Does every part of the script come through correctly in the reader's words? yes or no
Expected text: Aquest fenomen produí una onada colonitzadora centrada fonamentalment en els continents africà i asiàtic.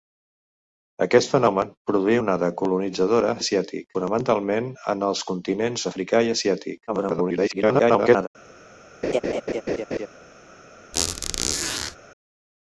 no